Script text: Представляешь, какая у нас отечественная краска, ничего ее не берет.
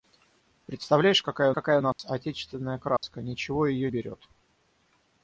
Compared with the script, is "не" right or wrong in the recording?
wrong